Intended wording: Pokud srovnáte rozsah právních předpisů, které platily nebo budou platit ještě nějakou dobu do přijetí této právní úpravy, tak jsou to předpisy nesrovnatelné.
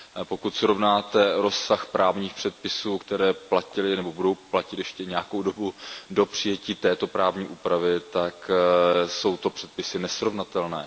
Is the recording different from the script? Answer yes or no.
no